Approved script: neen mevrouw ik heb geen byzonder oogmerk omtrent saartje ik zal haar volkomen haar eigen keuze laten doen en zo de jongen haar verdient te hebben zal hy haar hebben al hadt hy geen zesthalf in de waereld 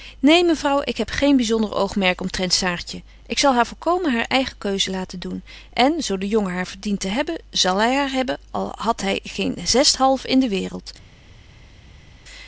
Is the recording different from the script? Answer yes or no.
no